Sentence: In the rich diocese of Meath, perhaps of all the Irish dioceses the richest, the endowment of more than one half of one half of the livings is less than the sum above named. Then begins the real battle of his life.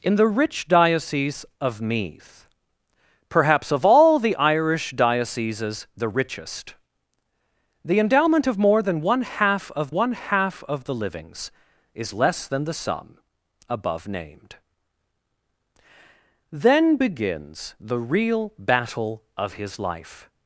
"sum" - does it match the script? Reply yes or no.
yes